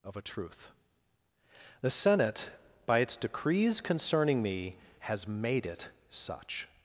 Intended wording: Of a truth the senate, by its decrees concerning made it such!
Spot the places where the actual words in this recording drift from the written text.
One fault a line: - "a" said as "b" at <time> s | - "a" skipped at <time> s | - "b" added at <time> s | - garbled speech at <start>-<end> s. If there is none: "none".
- "me has" added at 4.4 s